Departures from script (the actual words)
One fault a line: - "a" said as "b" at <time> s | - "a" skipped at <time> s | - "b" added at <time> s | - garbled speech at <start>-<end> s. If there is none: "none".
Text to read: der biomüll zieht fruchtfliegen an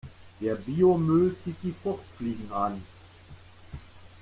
- "die" added at 1.6 s